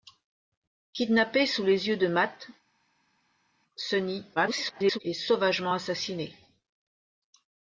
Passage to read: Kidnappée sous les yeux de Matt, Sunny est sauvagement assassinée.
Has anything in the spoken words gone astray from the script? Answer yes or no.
yes